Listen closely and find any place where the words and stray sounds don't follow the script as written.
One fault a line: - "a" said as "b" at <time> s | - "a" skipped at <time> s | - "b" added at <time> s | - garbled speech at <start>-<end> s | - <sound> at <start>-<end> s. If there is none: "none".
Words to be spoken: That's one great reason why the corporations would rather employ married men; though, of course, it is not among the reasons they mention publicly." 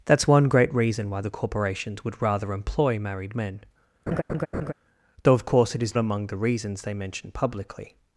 - laugh at 4.1-4.7 s
- "not" skipped at 6.0 s